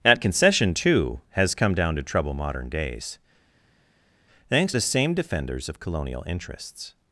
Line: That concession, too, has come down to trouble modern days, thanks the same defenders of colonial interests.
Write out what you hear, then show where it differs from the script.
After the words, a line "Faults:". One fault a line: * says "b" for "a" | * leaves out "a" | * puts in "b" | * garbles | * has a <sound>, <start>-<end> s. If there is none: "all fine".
That concession, too, has come down to trouble modern days, thanks the same defenders of colonial interests.
Faults:
all fine